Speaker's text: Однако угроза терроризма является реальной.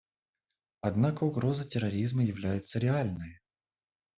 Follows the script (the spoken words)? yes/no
yes